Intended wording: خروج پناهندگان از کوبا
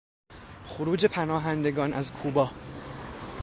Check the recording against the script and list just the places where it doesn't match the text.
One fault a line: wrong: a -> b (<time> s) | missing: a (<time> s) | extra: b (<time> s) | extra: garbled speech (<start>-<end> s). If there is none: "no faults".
no faults